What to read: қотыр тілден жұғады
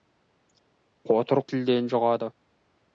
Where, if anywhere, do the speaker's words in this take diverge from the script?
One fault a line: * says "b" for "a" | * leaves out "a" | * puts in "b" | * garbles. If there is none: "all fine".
all fine